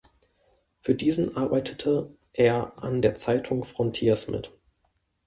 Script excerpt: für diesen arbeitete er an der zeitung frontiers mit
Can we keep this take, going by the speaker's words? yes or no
yes